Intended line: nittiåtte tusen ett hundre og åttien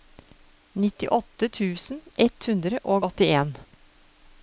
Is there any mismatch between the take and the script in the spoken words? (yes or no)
no